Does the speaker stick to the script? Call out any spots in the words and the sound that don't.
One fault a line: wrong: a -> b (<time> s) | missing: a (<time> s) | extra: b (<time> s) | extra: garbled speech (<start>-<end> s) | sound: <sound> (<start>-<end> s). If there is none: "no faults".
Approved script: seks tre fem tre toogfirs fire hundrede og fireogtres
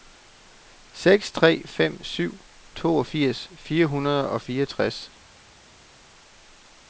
wrong: tre -> syv (2.0 s)